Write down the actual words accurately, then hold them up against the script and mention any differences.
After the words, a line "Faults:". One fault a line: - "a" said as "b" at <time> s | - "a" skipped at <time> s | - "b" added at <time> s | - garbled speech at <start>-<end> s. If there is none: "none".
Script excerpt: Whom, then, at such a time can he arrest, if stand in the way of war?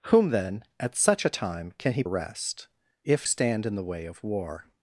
Whom, then, at such a time can he arrest, if stand in the way of war?
Faults:
none